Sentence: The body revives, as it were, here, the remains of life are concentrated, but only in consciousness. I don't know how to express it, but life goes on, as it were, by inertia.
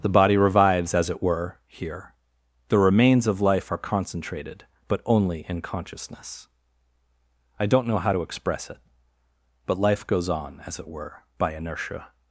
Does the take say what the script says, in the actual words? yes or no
yes